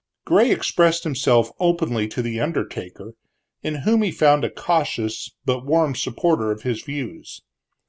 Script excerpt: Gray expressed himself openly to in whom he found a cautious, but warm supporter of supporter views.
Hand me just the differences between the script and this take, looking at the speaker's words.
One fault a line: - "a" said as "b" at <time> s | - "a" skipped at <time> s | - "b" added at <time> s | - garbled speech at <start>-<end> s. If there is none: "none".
- "the undertaker" added at 2.2 s
- "supporter" said as "his" at 6.6 s